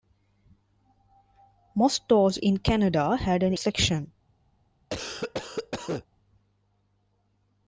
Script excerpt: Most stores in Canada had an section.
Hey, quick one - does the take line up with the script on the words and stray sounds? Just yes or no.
no